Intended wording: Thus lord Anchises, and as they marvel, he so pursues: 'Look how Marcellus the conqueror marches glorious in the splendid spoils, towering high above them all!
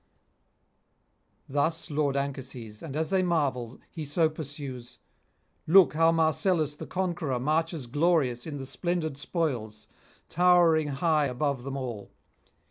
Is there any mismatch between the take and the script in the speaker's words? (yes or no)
no